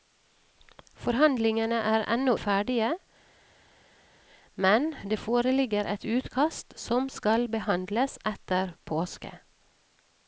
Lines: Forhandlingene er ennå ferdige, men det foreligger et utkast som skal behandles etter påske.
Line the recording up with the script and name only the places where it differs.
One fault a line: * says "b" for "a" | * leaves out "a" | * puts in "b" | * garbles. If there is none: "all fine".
all fine